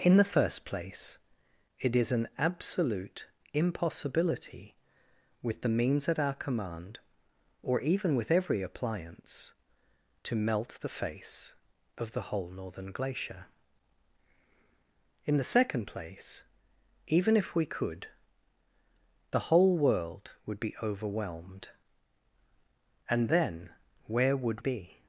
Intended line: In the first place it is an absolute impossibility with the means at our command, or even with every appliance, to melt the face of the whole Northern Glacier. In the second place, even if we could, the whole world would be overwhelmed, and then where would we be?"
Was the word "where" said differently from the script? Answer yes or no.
no